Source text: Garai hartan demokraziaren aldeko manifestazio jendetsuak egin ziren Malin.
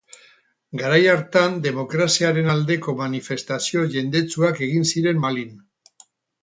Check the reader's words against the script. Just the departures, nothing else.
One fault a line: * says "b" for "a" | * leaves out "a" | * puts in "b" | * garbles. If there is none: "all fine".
all fine